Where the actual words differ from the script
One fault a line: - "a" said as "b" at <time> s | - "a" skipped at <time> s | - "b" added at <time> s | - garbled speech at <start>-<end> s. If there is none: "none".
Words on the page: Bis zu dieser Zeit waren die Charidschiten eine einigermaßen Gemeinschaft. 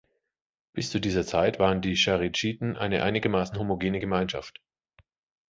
- "homogene" added at 3.6 s